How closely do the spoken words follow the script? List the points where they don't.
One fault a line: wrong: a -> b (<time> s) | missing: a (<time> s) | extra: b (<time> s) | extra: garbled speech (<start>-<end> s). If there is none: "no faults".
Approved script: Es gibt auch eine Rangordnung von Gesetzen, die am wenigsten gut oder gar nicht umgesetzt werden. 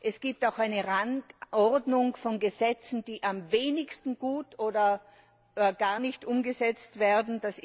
no faults